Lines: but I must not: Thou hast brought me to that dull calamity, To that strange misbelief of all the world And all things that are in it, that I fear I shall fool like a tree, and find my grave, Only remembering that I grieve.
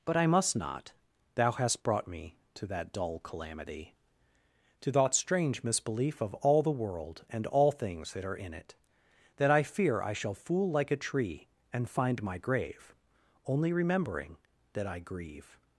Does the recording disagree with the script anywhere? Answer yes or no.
no